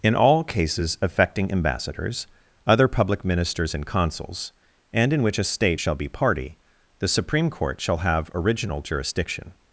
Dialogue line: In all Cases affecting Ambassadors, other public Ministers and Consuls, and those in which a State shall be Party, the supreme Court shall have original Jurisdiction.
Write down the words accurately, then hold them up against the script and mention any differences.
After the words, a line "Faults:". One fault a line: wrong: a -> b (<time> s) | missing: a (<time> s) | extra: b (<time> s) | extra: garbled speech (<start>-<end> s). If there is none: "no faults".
In all Cases affecting Ambassadors, other public Ministers and Consuls, and in which a State shall be Party, the supreme Court shall have original Jurisdiction.
Faults:
missing: those (5.1 s)